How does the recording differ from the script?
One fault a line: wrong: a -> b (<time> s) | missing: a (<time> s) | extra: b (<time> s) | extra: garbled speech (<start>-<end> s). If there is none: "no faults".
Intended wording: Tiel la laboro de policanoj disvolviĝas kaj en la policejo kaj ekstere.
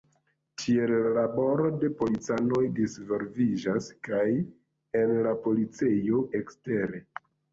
missing: kaj (6.2 s)